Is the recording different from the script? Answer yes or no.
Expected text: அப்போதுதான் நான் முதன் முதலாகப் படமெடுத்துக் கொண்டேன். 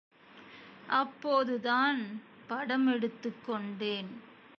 yes